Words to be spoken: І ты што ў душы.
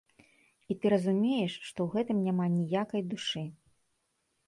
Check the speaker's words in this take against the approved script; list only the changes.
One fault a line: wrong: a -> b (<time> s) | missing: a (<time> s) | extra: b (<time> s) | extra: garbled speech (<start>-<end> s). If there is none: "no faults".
extra: разумееш (0.9 s)
extra: гэтым няма ніякай (2.0 s)